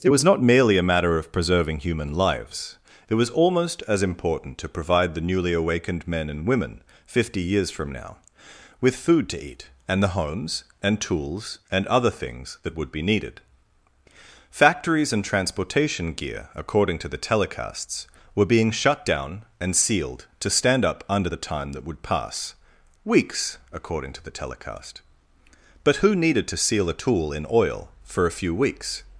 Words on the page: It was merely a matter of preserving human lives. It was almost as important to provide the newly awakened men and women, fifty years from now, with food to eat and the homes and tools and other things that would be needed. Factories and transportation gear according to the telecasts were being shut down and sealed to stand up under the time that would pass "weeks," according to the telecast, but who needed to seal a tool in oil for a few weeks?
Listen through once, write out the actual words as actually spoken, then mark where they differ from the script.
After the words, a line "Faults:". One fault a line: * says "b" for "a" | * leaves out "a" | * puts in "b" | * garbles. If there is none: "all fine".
It was not merely a matter of preserving human lives. It was almost as important to provide the newly awakened men and women, fifty years from now, with food to eat and the homes and tools and other things that would be needed. Factories and transportation gear according to the telecasts were being shut down and sealed to stand up under the time that would pass "weeks," according to the telecast, but who needed to seal a tool in oil for a few weeks?
Faults:
* puts in "not"